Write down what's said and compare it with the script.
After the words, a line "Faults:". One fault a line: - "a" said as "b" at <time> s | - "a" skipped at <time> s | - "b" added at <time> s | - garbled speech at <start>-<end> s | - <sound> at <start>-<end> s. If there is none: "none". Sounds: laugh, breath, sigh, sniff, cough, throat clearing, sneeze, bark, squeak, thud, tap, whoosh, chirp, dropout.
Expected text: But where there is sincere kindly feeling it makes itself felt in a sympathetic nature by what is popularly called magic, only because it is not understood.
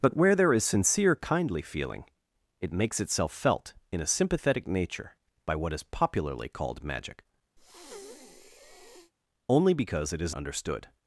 But where there is sincere kindly feeling it makes itself felt in a sympathetic nature by what is popularly called magic, only because it is understood.
Faults:
- breath at 7.6-9.1 s
- "not" skipped at 10.3 s